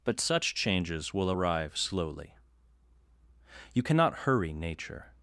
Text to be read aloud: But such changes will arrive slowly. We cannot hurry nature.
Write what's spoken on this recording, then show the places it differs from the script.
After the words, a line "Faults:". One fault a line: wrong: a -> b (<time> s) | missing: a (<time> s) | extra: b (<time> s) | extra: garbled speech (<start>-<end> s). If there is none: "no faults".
But such changes will arrive slowly. You cannot hurry nature.
Faults:
wrong: We -> You (3.7 s)